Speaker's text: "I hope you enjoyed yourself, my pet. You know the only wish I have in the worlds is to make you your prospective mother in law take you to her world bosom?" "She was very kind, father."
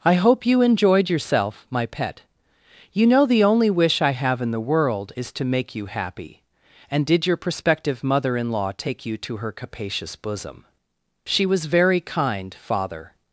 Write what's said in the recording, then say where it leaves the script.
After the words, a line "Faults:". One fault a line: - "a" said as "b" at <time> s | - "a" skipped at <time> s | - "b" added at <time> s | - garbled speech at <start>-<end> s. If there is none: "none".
"I hope you enjoyed yourself, my pet. You know the only wish I have in the world is to make you happy. And did your prospective mother in law take you to her capacious bosom?" "She was very kind, father."
Faults:
- "worlds" said as "world" at 4.7 s
- "happy And did" added at 5.9 s
- "world" said as "capacious" at 9.5 s